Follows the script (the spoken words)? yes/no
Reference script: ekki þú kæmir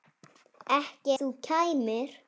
yes